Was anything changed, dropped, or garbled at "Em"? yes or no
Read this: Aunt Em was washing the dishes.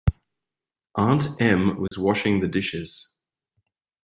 no